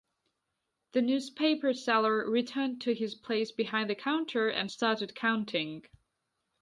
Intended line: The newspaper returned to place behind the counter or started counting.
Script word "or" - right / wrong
wrong